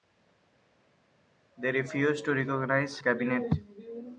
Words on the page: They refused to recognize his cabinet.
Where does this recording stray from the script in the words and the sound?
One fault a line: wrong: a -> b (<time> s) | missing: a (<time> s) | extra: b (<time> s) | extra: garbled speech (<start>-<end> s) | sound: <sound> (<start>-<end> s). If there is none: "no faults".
missing: his (3.0 s)